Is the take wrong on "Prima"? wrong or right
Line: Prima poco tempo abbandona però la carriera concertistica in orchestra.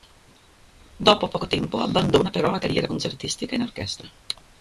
wrong